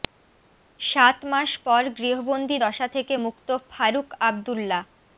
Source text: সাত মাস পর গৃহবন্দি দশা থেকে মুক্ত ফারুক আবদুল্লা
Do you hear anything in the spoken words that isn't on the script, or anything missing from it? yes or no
no